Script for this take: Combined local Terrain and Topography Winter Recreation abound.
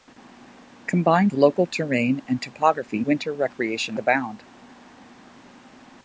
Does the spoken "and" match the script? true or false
true